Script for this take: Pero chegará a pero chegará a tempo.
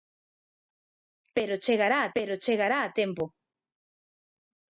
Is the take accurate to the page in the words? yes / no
yes